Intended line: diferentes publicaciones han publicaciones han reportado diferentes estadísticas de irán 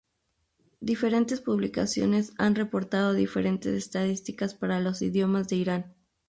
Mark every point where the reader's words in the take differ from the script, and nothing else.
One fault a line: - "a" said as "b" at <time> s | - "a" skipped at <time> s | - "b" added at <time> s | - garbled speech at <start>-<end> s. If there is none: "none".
- "publicaciones han" skipped at 2.5 s
- "para los idiomas" added at 4.5 s